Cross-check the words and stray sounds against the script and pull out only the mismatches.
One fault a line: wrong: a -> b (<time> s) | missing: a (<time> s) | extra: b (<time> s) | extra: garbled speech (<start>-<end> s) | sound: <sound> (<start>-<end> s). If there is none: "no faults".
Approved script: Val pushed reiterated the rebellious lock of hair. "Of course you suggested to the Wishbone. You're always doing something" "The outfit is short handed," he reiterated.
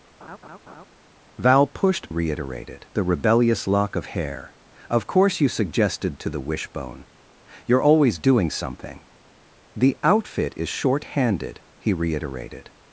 sound: laugh (0.2-0.9 s)